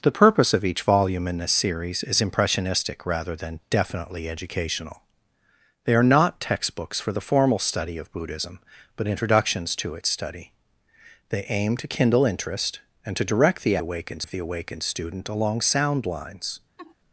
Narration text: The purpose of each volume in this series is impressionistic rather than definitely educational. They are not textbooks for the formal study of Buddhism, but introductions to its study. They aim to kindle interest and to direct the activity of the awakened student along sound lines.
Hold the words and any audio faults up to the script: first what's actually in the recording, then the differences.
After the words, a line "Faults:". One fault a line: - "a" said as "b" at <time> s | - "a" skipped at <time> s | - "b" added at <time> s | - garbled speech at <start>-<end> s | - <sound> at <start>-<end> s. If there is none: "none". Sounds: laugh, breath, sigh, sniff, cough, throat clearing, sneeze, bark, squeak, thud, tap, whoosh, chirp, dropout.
The purpose of each volume in this series is impressionistic rather than definitely educational. They are not textbooks for the formal study of Buddhism, but introductions to its study. They aim to kindle interest and to direct the awakened of the awakened student along sound lines.
Faults:
- "activity" said as "awakened" at 13.8 s
- laugh at 16.8-17.0 s